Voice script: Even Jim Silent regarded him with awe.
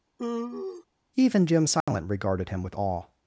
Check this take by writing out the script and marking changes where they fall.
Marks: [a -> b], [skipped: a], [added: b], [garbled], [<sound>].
[sigh] Even Jim Silent [dropout] regarded him with awe.